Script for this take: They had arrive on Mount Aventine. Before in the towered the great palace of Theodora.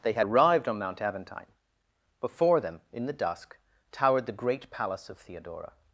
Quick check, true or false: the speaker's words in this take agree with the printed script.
false